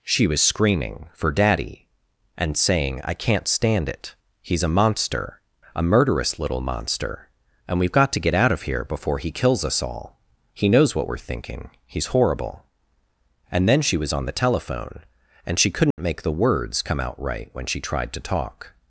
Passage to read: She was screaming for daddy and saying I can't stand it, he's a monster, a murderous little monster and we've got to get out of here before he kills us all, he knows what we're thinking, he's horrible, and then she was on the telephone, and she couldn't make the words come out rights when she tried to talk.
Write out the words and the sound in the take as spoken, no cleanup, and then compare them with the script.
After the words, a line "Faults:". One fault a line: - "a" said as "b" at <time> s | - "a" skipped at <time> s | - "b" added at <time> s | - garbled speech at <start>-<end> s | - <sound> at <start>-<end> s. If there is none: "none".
She was screaming for daddy and saying I can't stand it, he's a monster, a murderous little monster and we've got to get out of here before he kills us all, he knows what we're thinking, he's horrible, and then she was on the telephone, and she couldn't make the words come out right when she tried to talk.
Faults:
- dropout at 15.9-16.0 s
- "rights" said as "right" at 17.2 s